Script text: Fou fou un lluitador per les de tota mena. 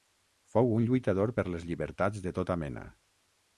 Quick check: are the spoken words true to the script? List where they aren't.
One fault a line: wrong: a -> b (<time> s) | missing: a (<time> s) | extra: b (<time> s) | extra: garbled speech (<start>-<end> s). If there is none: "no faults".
missing: fou (0.7 s)
extra: llibertats (1.7 s)